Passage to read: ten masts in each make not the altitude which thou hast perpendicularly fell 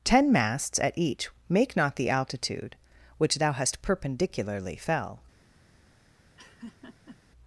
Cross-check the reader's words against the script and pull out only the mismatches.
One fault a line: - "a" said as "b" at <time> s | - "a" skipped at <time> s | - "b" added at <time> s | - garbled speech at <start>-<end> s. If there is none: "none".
- "in" said as "at" at 0.8 s